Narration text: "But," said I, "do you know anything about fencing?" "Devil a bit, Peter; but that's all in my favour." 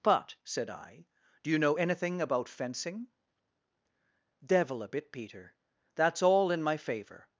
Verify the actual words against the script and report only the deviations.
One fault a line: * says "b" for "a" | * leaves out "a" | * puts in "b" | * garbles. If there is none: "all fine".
* leaves out "but"